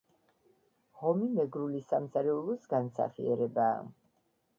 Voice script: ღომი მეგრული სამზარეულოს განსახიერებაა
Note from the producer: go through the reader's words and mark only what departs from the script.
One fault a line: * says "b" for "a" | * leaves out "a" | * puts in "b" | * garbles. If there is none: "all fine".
all fine